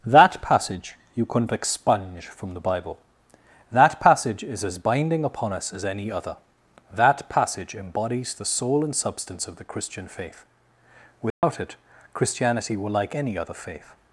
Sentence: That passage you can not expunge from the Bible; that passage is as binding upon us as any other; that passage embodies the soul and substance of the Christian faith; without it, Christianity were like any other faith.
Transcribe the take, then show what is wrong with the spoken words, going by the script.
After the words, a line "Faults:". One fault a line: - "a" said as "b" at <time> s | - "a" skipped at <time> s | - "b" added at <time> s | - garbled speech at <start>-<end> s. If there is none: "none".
That passage you couldn't expunge from the Bible; that passage is as binding upon us as any other; that passage embodies the soul and substance of the Christian faith; without it, Christianity were like any other faith.
Faults:
- "can not" said as "couldn't" at 1.3 s